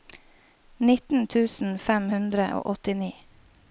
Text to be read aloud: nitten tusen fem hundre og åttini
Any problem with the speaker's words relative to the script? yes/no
no